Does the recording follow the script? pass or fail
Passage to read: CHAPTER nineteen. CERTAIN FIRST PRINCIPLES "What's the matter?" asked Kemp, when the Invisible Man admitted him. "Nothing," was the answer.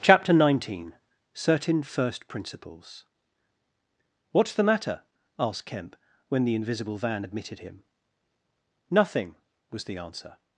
fail